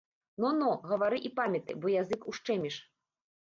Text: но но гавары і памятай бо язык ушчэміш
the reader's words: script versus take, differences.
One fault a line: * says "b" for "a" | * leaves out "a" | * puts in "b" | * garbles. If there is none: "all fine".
all fine